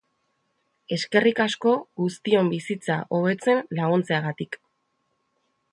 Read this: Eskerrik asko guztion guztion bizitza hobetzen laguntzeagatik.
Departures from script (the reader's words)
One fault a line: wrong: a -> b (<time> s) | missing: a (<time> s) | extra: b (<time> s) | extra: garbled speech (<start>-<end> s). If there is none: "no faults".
missing: guztion (2.5 s)